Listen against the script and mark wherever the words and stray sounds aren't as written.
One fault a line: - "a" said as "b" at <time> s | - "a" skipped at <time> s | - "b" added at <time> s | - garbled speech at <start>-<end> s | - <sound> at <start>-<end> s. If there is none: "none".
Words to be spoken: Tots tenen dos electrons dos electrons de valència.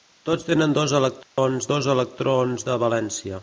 - dropout at 1.2-1.4 s